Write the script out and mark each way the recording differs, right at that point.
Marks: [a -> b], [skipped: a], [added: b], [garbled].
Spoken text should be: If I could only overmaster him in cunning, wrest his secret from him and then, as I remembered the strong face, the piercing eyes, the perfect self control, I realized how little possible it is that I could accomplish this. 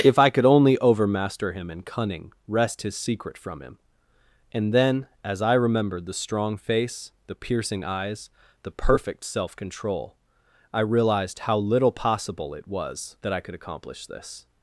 If I could only overmaster him in cunning, wrest his secret from him and then, as I remembered the strong face, the piercing eyes, the perfect self control, I realized how little possible it [is -> was] that I could accomplish this.